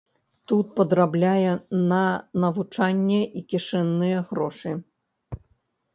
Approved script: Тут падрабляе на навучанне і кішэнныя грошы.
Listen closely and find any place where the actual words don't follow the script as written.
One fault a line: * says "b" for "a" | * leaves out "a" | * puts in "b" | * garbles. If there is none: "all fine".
all fine